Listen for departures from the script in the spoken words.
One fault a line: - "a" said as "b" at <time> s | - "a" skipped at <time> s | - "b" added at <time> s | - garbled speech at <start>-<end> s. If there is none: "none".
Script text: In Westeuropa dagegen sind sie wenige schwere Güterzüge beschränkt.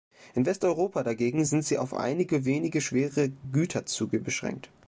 - "auf einige" added at 1.8 s